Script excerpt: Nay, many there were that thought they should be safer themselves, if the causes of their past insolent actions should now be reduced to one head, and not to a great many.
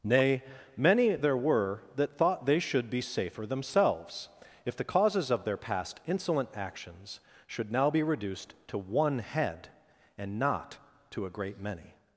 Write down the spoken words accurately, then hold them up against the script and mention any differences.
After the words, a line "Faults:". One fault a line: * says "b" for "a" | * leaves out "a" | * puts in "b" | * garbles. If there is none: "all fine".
Nay, many there were that thought they should be safer themselves, if the causes of their past insolent actions should now be reduced to one head, and not to a great many.
Faults:
all fine